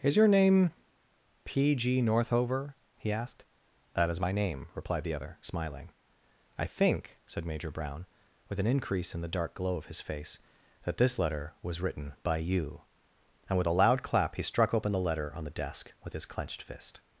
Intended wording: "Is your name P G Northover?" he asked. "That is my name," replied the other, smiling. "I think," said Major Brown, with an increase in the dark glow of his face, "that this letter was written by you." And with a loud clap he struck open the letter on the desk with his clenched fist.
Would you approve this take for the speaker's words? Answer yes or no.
yes